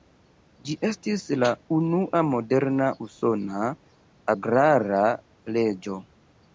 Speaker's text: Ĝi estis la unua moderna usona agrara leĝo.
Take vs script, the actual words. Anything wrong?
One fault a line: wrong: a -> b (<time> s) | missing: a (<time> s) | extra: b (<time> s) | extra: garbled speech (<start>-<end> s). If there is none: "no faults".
no faults